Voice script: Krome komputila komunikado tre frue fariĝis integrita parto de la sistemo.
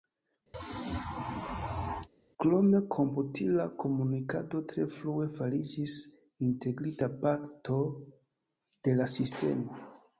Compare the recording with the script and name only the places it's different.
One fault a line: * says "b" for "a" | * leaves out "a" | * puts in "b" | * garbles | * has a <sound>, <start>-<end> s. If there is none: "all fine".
* has a sneeze, 0.5-2.1 s